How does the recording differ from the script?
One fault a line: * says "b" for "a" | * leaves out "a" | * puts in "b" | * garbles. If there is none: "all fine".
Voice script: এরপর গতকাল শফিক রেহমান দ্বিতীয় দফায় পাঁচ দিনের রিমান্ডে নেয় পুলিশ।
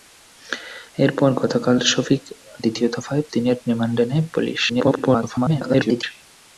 * leaves out "রেহমান"
* leaves out "পাঁচ"
* garbles